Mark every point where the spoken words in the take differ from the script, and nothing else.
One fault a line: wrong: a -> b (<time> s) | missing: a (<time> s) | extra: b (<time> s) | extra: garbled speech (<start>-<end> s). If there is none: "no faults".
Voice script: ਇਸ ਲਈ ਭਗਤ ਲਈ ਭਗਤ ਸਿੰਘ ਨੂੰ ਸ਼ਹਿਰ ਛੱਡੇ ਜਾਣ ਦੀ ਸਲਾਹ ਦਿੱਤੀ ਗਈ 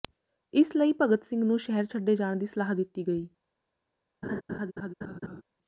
missing: ਲਈ ਭਗਤ (1.2 s)